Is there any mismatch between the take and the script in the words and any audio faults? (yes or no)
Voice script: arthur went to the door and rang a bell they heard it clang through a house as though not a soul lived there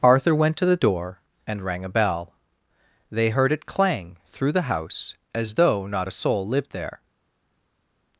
yes